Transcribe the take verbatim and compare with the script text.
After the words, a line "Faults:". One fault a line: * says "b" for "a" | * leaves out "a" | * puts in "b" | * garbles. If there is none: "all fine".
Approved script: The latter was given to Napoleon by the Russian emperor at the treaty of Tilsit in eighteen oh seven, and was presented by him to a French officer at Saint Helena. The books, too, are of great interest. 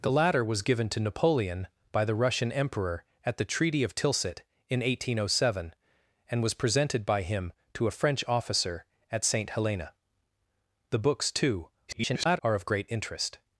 The latter was given to Napoleon by the Russian emperor at the treaty of Tilsit in eighteen oh seven, and was presented by him to a French officer at Saint Helena. The books, too, [garbled] are of great interest.
Faults:
* garbles